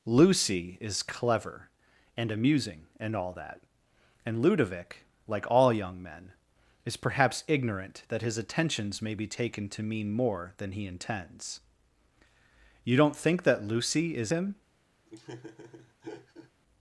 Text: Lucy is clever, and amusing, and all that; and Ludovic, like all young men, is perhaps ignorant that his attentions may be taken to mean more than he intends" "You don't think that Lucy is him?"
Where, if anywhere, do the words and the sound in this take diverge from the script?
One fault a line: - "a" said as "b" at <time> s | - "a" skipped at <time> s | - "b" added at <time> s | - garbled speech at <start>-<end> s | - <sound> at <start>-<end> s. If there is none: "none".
- laugh at 15.1-16.5 s